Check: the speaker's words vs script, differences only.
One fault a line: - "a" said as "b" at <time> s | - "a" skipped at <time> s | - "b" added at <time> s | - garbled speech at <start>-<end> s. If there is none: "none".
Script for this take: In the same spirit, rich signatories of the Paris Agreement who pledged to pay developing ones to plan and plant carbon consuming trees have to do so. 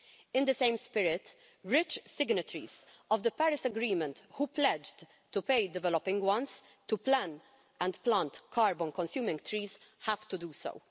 none